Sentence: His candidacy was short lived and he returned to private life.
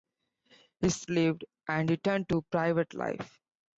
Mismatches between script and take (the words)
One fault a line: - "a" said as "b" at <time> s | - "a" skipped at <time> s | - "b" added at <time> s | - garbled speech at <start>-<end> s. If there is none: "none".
- "candidacy was short" skipped at 1.1 s
- "he" skipped at 1.9 s